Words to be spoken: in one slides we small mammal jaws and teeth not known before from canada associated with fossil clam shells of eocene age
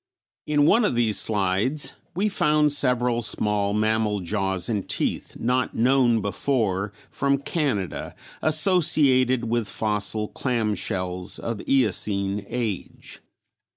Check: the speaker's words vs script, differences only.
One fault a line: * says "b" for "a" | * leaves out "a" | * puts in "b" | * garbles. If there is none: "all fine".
* puts in "of these"
* puts in "found several"